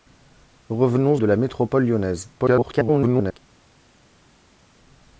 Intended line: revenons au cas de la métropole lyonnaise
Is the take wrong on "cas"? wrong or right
wrong